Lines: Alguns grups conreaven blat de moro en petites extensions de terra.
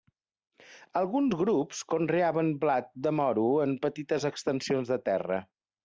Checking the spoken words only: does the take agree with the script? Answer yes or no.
yes